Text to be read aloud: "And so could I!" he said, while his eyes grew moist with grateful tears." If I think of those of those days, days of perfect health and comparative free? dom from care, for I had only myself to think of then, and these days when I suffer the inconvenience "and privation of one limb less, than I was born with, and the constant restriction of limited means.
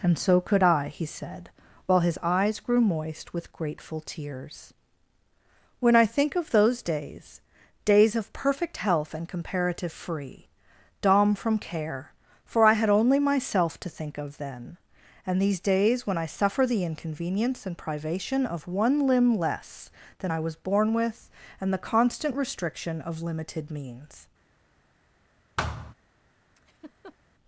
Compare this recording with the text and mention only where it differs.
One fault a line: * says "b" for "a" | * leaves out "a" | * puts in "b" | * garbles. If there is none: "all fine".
* says "When" for "If"
* leaves out "of those"